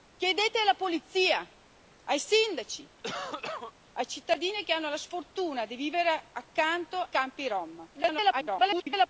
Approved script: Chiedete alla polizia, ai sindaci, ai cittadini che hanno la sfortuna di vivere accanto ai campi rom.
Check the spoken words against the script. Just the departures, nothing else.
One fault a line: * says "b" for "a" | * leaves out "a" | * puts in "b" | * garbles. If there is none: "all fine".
* leaves out "ai"
* garbles